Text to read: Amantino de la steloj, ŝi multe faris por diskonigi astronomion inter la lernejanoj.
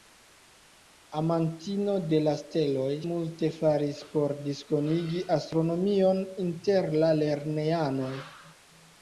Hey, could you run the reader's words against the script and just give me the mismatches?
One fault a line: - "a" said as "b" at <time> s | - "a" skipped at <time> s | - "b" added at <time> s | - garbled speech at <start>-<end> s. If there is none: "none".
- "ŝi" skipped at 2.9 s